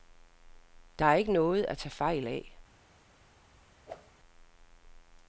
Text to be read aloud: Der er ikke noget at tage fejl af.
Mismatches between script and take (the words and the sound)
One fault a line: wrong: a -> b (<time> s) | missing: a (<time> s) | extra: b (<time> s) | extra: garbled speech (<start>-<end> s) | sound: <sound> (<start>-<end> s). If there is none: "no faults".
sound: whoosh (3.9-4.1 s)